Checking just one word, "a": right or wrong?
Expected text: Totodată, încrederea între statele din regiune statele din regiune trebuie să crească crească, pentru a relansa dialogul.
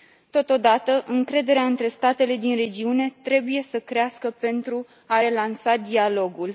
right